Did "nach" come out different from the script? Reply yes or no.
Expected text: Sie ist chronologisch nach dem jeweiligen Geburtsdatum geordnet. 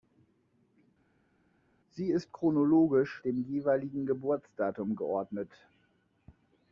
yes